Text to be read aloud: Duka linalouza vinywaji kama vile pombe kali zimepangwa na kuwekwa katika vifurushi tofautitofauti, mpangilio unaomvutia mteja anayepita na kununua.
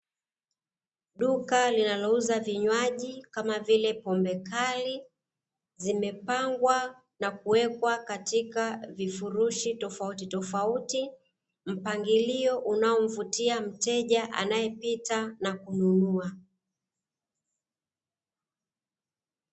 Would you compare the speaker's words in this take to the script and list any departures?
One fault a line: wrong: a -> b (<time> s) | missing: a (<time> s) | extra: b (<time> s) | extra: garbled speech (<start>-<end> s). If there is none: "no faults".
no faults